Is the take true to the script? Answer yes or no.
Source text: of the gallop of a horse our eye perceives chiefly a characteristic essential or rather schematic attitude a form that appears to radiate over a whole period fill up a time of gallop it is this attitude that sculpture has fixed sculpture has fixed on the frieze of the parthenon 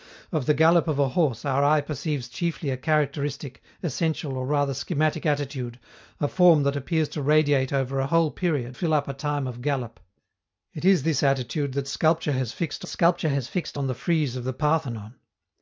yes